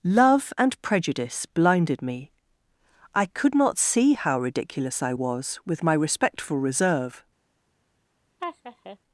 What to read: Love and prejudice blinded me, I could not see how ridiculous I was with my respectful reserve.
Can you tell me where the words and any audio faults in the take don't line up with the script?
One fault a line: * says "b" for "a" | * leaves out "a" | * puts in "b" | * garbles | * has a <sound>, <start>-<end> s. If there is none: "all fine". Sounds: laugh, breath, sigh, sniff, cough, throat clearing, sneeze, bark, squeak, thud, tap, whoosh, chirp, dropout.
* has a laugh, 8.4-9.0 s